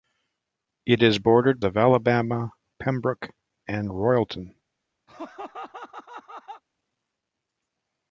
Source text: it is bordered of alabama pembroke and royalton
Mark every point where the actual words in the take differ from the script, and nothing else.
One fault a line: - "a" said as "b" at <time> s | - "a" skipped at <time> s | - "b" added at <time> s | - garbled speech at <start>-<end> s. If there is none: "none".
none